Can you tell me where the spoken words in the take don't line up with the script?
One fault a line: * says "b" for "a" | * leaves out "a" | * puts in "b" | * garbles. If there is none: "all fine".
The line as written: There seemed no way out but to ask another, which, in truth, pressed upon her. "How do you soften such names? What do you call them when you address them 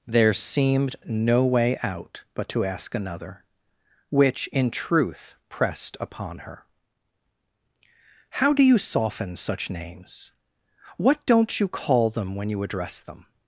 * says "don't" for "do"